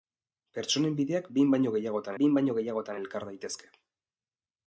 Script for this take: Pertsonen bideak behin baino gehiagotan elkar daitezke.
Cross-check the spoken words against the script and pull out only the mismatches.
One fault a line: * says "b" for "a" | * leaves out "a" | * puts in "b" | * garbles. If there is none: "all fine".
* puts in "behin baino gehiagotan"